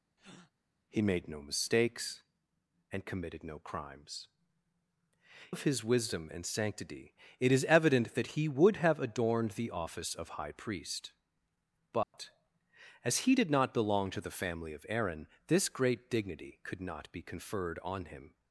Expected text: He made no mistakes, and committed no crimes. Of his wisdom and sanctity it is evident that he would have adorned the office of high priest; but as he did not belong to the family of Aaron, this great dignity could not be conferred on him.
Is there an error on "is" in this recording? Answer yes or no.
no